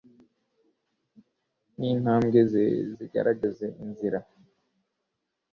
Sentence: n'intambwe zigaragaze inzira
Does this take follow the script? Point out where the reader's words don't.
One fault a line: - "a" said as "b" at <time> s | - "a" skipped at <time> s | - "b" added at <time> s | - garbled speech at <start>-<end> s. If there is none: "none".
- "ze" added at 2.5 s